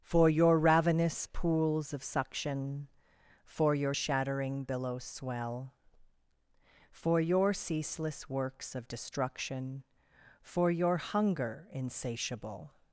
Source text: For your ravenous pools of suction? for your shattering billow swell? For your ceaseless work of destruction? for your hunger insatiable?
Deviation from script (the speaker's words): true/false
true